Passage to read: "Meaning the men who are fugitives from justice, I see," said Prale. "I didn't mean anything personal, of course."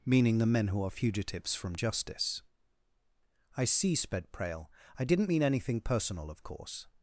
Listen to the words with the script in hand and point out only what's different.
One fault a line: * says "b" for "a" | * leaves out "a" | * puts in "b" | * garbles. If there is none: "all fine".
* says "sped" for "said"